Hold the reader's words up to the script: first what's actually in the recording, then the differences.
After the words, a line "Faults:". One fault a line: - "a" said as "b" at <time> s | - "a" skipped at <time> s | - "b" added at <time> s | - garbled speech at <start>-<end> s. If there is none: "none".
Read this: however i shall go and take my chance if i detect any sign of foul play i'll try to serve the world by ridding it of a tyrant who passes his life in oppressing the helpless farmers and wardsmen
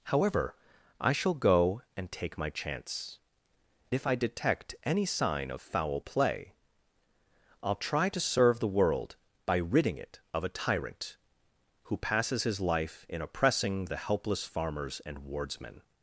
however i shall go and take my chance if i detect any sign of foul play i'll try to serve the world by ridding it of a tyrant who passes his life in oppressing the helpless farmers and wardsmen
Faults:
none